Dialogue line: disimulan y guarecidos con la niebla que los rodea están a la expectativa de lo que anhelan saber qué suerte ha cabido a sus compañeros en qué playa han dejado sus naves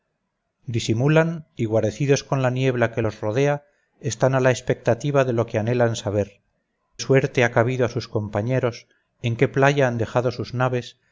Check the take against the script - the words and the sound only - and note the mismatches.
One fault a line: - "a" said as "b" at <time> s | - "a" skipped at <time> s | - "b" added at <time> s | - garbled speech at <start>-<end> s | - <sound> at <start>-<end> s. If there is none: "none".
- "qué" skipped at 6.4 s